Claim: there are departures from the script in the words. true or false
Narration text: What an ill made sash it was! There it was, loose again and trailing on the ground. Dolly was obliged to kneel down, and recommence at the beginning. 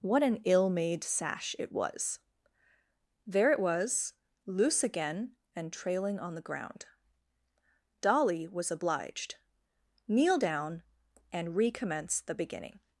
true